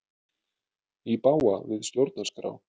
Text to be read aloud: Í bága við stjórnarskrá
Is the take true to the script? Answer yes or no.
yes